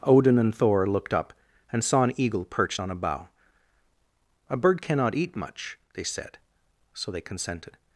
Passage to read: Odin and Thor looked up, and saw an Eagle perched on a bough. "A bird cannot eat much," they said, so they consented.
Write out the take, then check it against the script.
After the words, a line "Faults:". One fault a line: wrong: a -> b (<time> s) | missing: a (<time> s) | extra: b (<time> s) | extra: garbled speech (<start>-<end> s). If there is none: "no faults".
Odin and Thor looked up, and saw an Eagle perched on a bough. "A bird cannot eat much," they said, so they consented.
Faults:
no faults